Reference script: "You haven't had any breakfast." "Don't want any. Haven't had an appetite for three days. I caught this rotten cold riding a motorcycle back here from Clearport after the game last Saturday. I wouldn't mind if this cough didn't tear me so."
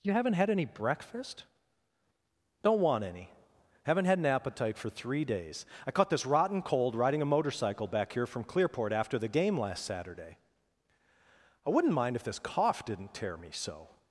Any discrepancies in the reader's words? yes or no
no